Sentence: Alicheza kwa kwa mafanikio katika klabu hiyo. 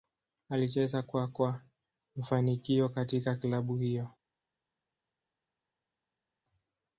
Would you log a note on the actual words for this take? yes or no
no